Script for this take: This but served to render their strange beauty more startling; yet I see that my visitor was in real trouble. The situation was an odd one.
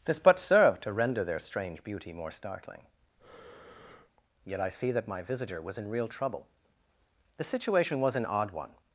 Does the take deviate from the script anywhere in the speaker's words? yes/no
no